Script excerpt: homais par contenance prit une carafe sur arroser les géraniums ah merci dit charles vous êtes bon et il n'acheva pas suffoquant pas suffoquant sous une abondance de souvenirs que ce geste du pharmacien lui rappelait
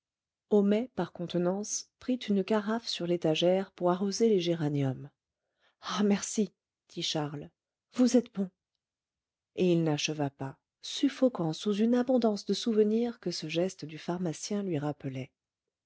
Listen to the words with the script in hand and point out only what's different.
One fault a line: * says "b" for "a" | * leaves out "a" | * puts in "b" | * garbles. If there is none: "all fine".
* puts in "l'étagère pour"
* leaves out "pas suffoquant"